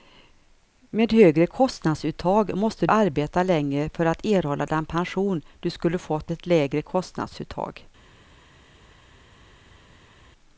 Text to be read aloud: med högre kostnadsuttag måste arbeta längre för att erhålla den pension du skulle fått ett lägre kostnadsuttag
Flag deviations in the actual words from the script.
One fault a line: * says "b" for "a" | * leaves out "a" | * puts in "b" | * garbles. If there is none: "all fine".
all fine